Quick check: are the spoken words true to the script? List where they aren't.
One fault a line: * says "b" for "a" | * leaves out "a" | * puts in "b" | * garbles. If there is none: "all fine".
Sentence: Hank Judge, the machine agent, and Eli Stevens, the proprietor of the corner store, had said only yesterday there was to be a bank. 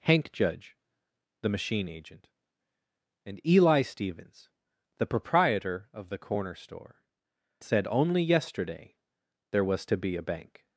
* leaves out "had"